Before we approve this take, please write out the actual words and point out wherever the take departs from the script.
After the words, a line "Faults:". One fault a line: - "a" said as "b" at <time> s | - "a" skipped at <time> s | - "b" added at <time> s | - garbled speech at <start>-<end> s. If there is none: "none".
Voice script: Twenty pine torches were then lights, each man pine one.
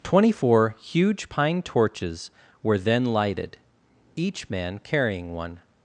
Twenty four huge pine torches were then lighted, each man carrying one.
Faults:
- "four huge" added at 0.3 s
- "lights" said as "lighted" at 3.1 s
- "pine" said as "carrying" at 4.8 s